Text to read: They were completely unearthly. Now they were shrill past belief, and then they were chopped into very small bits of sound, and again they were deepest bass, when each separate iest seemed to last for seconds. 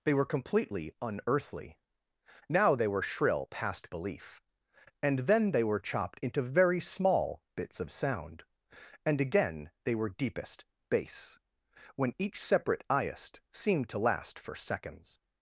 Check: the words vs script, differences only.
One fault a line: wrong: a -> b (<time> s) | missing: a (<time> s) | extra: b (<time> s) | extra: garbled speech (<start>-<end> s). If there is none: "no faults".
no faults